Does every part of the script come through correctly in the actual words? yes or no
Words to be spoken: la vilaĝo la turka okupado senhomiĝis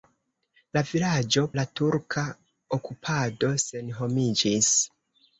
yes